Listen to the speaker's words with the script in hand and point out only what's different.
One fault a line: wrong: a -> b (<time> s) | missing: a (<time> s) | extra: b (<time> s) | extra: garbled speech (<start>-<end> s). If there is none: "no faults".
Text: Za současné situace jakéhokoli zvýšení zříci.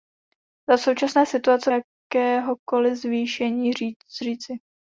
no faults